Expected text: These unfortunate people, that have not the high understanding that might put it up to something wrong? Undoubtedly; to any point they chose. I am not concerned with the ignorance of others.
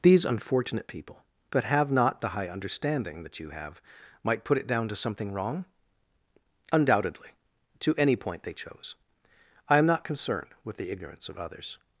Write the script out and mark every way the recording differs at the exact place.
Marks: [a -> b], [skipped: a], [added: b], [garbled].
These unfortunate people, that have not the high understanding that [added: you have] might put it [up -> down] to something wrong? Undoubtedly; to any point they chose. I am not concerned with the ignorance of others.